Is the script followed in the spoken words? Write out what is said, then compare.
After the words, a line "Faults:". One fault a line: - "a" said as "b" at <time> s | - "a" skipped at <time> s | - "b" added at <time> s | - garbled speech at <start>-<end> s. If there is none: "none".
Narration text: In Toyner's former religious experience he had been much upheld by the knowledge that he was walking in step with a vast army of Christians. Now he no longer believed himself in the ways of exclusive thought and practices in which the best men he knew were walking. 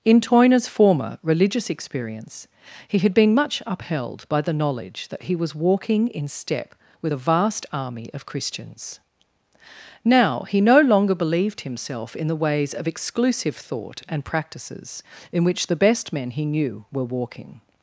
In Toyner's former religious experience he had been much upheld by the knowledge that he was walking in step with a vast army of Christians. Now he no longer believed himself in the ways of exclusive thought and practices in which the best men he knew were walking.
Faults:
none